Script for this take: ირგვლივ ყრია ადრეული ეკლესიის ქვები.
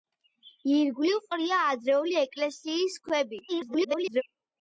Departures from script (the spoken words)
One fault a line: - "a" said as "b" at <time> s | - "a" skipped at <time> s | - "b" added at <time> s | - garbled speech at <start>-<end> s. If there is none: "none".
- garbled speech at 3.5-4.2 s